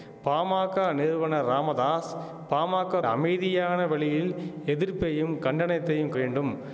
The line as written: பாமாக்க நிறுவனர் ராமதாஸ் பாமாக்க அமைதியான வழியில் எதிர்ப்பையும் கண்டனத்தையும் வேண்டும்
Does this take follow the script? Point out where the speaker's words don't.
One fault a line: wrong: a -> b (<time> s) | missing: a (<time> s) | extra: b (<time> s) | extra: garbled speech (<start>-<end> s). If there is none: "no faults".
no faults